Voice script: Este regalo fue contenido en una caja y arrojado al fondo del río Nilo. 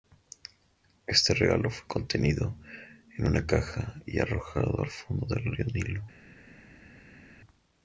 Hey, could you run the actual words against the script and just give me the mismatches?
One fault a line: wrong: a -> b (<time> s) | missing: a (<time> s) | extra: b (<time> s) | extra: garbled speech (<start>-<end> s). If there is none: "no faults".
no faults